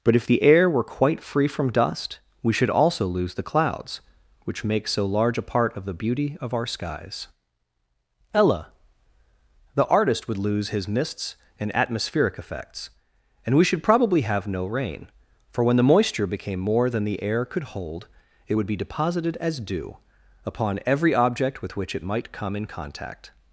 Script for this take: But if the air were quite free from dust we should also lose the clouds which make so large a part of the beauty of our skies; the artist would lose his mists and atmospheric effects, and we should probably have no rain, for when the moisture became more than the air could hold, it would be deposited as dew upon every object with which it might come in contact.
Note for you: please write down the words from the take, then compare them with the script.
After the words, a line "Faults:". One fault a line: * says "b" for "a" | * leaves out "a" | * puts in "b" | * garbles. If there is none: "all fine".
But if the air were quite free from dust we should also lose the clouds which make so large a part of the beauty of our skies; ella the artist would lose his mists and atmospheric effects, and we should probably have no rain, for when the moisture became more than the air could hold, it would be deposited as dew upon every object with which it might come in contact.
Faults:
* puts in "ella"